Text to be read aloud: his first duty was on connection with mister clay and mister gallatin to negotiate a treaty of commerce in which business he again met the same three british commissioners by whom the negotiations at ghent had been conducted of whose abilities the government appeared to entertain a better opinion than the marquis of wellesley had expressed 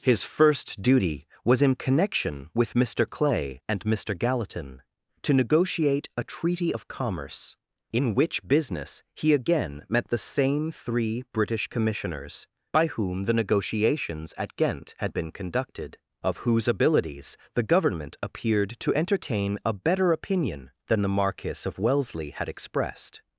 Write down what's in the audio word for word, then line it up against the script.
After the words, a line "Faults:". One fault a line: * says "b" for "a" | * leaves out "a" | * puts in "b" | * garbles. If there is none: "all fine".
his first duty was in connection with mister clay and mister gallatin to negotiate a treaty of commerce in which business he again met the same three british commissioners by whom the negotiations at ghent had been conducted of whose abilities the government appeared to entertain a better opinion than the marquis of wellesley had expressed
Faults:
* says "in" for "on"